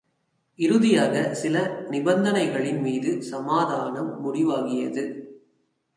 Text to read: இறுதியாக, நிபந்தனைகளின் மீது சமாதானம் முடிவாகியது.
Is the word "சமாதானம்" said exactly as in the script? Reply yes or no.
yes